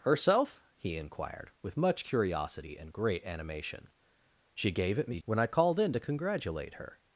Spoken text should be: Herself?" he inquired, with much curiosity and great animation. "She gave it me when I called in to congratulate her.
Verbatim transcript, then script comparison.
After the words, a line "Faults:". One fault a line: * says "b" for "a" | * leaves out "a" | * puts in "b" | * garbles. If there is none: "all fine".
Herself?" he inquired, with much curiosity and great animation. "She gave it me when I called in to congratulate her.
Faults:
all fine